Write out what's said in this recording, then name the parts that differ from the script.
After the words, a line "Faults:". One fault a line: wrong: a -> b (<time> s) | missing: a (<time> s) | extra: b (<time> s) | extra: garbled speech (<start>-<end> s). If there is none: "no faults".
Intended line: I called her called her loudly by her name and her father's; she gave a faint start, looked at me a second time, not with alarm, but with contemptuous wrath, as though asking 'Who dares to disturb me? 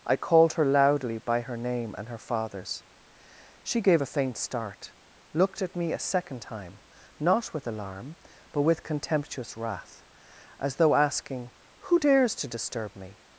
I called her loudly by her name and her father's; she gave a faint start, looked at me a second time, not with alarm, but with contemptuous wrath, as though asking 'Who dares to disturb me?
Faults:
missing: called her (0.7 s)